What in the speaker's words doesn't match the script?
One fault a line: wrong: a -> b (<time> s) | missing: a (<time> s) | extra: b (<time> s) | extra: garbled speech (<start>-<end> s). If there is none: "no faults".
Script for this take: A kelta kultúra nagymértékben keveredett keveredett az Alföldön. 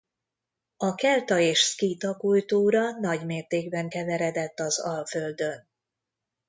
extra: és szkíta (1.4 s)
missing: keveredett (4.6 s)